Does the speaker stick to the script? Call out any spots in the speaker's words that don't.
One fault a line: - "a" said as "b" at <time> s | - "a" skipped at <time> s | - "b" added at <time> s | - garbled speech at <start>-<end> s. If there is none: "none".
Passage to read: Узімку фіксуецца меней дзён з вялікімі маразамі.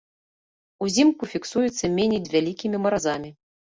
- "дзён" skipped at 2.2 s